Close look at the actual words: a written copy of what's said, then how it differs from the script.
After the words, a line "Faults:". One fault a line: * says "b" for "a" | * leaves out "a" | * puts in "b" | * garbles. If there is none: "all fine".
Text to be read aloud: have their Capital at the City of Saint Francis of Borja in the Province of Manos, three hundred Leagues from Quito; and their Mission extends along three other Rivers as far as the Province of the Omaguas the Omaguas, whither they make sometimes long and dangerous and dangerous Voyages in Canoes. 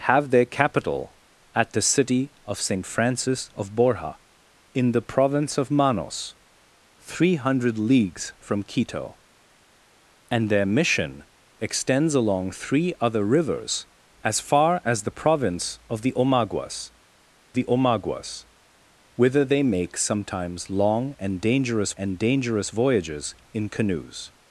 have their Capital at the City of Saint Francis of Borja in the Province of Manos, three hundred Leagues from Quito; and their Mission extends along three other Rivers as far as the Province of the Omaguas the Omaguas, whither they make sometimes long and dangerous and dangerous Voyages in Canoes.
Faults:
all fine